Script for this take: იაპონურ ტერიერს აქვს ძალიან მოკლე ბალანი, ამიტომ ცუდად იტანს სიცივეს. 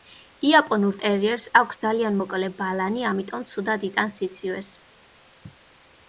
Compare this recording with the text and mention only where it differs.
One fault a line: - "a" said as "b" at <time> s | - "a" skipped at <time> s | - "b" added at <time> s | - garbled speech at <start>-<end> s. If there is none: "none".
none